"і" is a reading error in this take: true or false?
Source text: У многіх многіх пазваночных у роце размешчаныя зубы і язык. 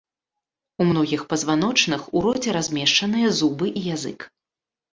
false